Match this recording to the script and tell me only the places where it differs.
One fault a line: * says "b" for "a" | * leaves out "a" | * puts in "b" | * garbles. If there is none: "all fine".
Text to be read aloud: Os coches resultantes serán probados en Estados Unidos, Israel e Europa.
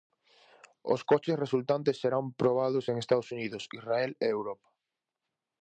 all fine